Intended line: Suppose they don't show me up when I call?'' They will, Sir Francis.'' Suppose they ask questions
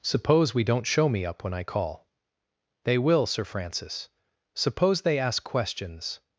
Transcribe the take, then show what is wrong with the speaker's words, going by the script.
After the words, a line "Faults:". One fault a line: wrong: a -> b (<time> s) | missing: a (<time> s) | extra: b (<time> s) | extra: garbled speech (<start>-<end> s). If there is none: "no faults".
Suppose we don't show me up when I call?'' They will, Sir Francis.'' Suppose they ask questions
Faults:
wrong: they -> we (0.5 s)